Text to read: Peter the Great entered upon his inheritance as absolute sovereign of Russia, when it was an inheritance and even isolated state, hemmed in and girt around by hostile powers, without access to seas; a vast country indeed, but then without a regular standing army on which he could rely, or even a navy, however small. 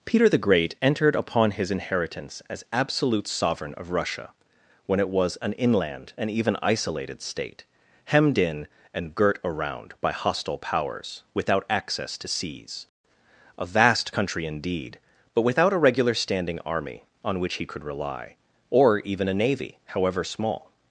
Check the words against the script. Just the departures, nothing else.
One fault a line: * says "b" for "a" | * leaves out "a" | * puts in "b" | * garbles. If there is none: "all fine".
* says "inland" for "inheritance"
* leaves out "then"